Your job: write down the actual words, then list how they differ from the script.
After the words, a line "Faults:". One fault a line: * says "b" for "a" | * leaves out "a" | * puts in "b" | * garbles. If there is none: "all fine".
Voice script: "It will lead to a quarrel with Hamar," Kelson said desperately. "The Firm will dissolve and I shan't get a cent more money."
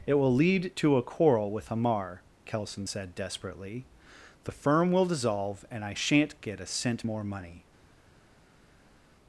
"It will lead to a quarrel with Hamar," Kelson said desperately. "The Firm will dissolve and I shan't get a cent more money."
Faults:
all fine